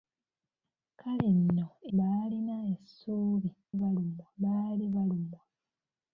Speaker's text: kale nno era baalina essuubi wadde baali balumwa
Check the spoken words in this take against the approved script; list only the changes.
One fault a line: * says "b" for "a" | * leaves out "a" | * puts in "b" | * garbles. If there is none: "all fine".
* leaves out "era"
* says "balumwa" for "wadde"